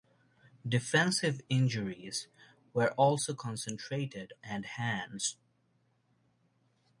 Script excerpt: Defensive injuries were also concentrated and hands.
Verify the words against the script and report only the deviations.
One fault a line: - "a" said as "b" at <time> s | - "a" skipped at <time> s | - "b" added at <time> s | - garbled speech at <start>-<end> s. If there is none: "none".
none